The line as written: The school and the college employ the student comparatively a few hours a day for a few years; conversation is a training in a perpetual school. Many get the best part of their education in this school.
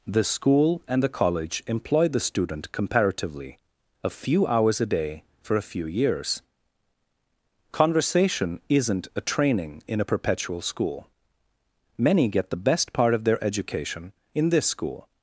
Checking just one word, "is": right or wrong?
wrong